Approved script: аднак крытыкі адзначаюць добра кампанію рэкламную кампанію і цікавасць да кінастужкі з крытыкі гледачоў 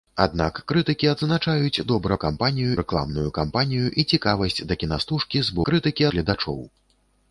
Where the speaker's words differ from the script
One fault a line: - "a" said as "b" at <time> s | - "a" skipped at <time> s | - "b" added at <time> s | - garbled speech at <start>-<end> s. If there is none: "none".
none